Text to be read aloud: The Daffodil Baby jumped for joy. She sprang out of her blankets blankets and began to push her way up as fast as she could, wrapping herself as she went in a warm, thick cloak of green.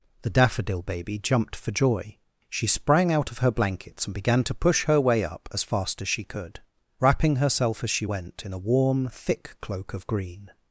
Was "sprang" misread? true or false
false